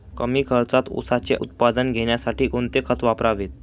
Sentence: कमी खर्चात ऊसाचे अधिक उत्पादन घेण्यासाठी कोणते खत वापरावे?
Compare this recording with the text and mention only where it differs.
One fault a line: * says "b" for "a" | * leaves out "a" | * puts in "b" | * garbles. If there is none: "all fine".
* leaves out "अधिक"